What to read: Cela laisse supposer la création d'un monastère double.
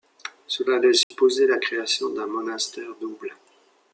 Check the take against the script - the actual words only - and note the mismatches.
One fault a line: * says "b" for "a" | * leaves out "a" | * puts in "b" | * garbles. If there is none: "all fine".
all fine